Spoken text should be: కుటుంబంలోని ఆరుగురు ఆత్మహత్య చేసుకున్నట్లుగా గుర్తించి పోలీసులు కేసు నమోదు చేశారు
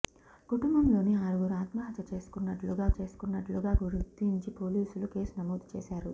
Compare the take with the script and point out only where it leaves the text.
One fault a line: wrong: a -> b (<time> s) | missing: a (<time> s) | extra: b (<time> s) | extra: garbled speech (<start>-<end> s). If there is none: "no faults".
extra: చేసుకున్నట్లుగా (3.0 s)